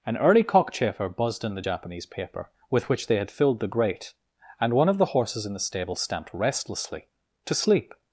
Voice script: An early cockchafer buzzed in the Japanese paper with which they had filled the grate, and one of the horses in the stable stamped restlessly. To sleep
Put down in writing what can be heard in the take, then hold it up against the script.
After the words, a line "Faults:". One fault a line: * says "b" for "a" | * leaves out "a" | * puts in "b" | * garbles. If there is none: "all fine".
An early cockchafer buzzed in the Japanese paper with which they had filled the grate, and one of the horses in the stable stamped restlessly. To sleep
Faults:
all fine